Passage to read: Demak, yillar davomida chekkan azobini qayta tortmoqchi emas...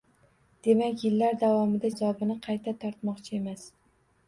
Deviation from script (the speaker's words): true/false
true